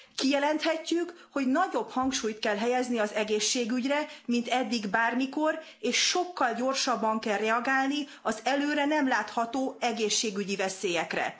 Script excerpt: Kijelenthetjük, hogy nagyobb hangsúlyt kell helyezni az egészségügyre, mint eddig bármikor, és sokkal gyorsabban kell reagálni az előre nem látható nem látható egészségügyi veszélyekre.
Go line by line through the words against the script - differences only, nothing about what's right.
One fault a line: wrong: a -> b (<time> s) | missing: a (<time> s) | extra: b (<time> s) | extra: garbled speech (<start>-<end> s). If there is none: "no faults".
missing: nem látható (9.8 s)